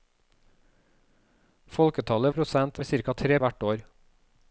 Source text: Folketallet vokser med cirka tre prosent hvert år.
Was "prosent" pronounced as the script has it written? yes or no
no